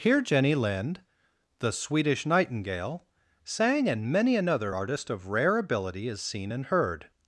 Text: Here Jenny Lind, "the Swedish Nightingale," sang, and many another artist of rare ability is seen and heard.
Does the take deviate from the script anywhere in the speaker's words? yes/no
no